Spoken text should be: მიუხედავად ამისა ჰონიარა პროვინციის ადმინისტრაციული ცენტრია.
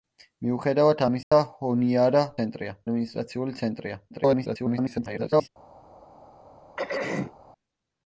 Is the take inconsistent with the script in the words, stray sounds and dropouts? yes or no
yes